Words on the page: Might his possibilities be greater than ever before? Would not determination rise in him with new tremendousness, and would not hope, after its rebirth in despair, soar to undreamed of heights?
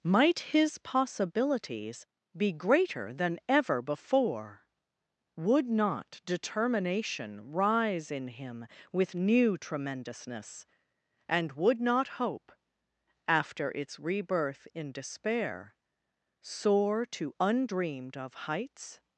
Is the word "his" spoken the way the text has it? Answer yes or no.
yes